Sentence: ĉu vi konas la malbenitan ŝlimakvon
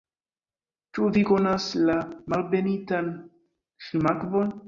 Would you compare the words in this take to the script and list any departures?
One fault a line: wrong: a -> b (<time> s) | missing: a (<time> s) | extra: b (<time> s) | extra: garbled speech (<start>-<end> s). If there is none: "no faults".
no faults